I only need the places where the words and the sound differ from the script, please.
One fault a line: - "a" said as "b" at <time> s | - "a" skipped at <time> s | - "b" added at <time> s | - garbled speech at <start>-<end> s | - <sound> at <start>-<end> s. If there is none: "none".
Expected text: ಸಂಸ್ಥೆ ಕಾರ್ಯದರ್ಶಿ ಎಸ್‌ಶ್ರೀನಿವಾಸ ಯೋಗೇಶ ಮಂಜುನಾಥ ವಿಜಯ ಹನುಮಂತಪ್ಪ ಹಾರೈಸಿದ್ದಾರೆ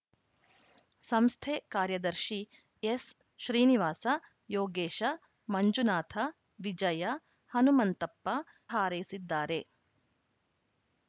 none